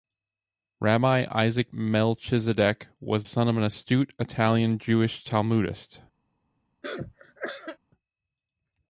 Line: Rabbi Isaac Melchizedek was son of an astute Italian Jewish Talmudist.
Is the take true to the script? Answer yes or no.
yes